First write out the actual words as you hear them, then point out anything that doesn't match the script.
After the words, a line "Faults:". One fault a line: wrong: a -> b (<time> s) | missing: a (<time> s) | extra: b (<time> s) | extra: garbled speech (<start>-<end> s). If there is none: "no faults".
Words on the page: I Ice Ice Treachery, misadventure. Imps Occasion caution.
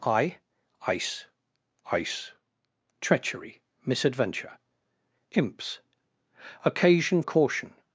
I Ice Ice Treachery, misadventure. Imps Occasion caution.
Faults:
no faults